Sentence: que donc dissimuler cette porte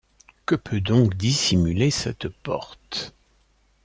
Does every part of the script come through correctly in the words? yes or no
no